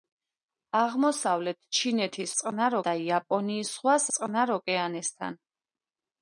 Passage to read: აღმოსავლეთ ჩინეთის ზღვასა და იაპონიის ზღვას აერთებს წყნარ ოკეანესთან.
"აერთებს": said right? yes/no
no